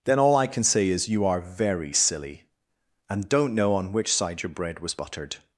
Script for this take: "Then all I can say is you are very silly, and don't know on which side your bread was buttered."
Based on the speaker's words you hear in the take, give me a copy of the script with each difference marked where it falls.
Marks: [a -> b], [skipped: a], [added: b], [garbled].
"Then all I can say is you are very silly, and don't know on which side your bread was buttered."